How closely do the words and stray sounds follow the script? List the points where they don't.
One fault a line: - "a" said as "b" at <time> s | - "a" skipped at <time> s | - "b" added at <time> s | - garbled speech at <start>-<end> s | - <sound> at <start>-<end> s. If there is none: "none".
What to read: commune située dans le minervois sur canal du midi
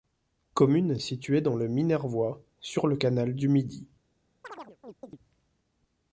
- "le" added at 2.9 s
- chirp at 4.4-5.2 s